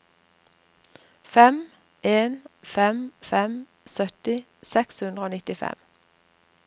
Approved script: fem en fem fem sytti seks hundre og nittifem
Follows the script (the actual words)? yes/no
yes